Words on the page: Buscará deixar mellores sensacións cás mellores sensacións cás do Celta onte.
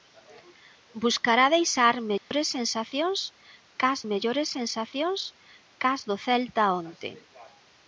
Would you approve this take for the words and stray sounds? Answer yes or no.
no